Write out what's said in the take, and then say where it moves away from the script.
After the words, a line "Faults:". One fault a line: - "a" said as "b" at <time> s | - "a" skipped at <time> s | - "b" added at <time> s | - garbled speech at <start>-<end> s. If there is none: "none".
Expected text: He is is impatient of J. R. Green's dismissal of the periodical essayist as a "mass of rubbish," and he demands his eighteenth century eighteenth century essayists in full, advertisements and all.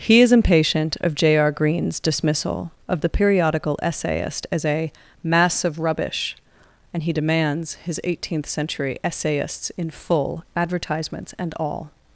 He is impatient of J. R. Green's dismissal of the periodical essayist as a "mass of rubbish," and he demands his eighteenth century essayists in full, advertisements and all.
Faults:
- "is" skipped at 0.3 s
- "eighteenth century" skipped at 9.0 s